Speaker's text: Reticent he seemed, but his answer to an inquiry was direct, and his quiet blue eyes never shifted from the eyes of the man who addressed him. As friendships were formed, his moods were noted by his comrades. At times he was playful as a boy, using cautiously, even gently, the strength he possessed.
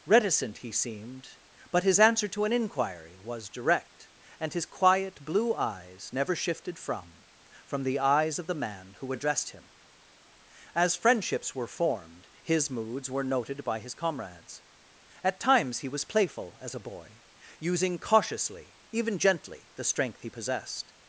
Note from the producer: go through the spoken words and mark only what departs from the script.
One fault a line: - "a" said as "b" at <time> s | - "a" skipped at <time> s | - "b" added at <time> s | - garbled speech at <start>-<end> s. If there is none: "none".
- "from" added at 7.7 s